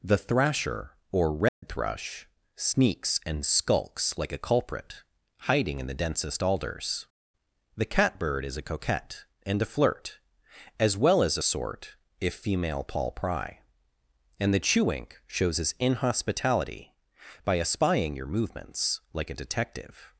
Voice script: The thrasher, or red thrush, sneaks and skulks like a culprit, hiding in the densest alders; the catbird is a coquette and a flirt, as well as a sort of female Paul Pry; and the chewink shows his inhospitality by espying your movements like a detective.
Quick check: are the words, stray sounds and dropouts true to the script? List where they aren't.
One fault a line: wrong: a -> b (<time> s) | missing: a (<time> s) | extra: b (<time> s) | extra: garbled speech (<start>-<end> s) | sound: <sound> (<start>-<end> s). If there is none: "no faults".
sound: dropout (1.5-1.6 s)
wrong: of -> if (12.2 s)